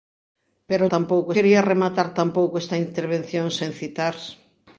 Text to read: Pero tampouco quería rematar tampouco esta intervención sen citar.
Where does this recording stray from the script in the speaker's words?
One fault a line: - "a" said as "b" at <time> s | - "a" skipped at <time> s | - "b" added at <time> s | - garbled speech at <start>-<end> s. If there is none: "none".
none